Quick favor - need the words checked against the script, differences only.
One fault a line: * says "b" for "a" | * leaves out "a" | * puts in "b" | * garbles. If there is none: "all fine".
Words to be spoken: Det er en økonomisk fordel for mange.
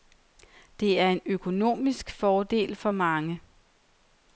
all fine